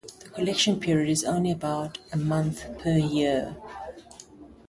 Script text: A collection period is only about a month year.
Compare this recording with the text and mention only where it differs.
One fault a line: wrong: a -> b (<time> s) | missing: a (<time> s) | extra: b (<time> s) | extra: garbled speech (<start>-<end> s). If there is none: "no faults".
wrong: A -> The (0.2 s)
extra: per (2.8 s)